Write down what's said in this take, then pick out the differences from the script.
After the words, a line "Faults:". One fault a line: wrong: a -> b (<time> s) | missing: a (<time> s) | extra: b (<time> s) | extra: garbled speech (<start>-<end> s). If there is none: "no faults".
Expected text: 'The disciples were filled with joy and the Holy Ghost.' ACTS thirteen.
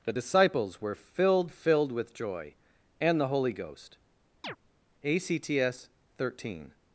'The disciples were filled filled with joy and the Holy Ghost.' ACTS thirteen.
Faults:
extra: filled (1.5 s)